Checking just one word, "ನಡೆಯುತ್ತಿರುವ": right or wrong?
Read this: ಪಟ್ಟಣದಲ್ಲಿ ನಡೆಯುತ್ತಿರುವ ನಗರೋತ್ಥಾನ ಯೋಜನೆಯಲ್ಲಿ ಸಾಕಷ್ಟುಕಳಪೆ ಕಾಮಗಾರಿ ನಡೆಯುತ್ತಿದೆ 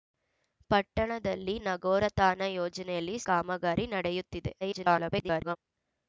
wrong